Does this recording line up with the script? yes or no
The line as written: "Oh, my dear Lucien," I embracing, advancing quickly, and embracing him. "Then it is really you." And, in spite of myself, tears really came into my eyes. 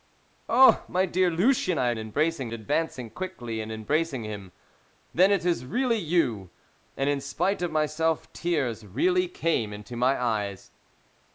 yes